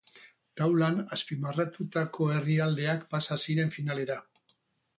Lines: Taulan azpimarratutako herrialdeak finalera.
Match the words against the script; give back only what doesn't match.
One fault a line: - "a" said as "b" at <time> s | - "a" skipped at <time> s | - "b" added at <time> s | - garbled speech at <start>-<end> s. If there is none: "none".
- "pasa ziren" added at 3.1 s